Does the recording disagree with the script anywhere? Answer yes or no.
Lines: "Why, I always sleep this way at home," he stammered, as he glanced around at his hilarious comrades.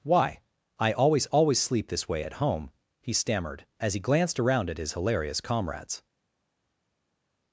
yes